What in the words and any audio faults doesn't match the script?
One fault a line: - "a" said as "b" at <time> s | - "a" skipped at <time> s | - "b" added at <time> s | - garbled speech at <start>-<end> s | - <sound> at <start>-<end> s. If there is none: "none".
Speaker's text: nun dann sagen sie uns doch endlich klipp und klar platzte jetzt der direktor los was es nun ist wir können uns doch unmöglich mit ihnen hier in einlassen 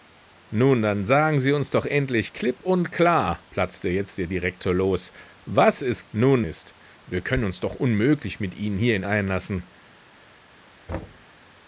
- thud at 10.9-11.3 s